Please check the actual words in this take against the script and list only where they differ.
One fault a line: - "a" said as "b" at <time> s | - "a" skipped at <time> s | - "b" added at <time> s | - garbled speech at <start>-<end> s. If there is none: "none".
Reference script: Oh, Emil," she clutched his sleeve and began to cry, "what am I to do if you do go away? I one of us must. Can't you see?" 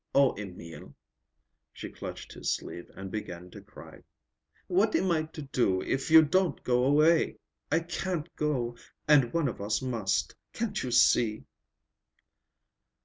- "do" said as "don't" at 6.2 s
- "can't go and" added at 7.8 s